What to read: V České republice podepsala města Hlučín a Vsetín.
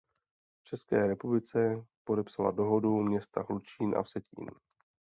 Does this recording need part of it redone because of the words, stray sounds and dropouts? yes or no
yes